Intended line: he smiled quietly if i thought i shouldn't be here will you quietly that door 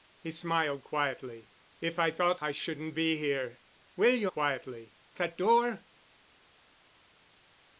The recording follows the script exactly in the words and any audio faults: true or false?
true